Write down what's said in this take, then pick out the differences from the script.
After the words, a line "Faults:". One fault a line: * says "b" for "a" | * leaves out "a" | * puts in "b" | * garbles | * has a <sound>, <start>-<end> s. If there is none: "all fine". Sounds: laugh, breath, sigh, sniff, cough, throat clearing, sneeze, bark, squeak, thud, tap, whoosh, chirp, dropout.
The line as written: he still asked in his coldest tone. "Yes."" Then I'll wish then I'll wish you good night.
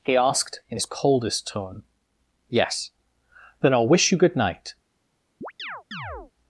he asked in his coldest tone. "Yes."" Then I'll wish you good night.
Faults:
* leaves out "still"
* leaves out "then I'll wish"
* has a chirp, 5.4-6.3 s